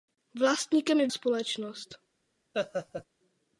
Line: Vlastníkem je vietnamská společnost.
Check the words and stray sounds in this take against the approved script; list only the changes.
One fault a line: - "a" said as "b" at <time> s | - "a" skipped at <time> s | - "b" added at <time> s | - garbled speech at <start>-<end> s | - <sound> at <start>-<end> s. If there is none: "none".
- "vietnamská" skipped at 1.1 s
- laugh at 2.5-3.1 s